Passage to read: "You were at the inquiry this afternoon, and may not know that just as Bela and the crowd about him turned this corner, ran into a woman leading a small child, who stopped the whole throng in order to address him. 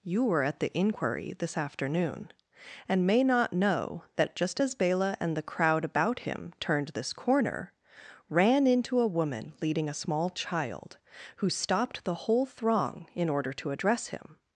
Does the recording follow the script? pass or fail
pass